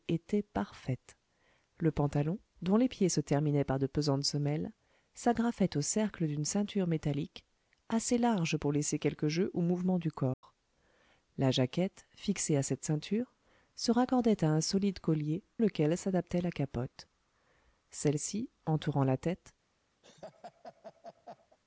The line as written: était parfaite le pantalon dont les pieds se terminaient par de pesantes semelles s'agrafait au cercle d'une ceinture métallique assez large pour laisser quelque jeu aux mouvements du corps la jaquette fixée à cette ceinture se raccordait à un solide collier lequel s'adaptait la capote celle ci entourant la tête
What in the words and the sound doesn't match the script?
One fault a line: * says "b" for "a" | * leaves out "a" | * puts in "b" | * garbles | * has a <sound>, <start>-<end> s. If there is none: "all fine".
* has a dropout, 10.3-10.4 s
* has a laugh, 20.0-21.6 s